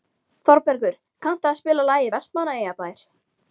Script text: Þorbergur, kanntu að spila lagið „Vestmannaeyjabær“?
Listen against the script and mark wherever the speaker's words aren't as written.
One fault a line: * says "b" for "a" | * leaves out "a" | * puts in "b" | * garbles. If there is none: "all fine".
all fine